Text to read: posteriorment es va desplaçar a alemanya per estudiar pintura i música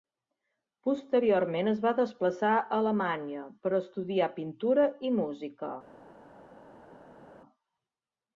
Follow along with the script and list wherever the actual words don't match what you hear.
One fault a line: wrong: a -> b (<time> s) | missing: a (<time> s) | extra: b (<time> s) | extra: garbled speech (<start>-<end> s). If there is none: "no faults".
no faults